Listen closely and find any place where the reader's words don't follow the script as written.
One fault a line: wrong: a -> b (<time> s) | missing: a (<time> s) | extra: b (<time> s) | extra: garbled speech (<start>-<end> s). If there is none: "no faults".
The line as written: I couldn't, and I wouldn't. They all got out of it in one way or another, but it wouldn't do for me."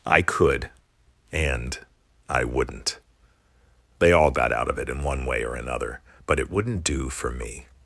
wrong: couldn't -> could (0.2 s)